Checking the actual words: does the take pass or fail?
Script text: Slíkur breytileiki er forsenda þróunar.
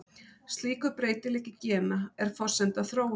fail